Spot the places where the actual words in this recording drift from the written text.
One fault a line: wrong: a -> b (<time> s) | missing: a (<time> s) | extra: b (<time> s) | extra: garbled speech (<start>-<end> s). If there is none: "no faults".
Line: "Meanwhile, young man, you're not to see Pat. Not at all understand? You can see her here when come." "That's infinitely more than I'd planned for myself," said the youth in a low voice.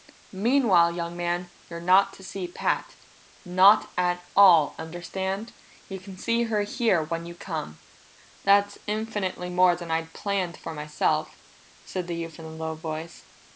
extra: you (7.2 s)